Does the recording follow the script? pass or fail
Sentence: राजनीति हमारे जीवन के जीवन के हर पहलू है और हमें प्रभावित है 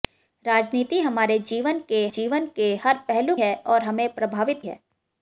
pass